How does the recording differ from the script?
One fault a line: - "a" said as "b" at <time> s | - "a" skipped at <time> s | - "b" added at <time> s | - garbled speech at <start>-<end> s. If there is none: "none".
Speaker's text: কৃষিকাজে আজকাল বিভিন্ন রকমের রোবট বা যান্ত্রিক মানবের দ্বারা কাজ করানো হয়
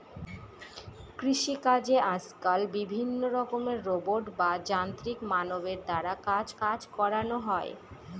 - "কাজ" added at 6.6 s